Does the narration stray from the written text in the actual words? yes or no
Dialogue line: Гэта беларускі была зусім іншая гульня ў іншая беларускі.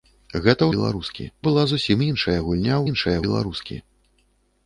no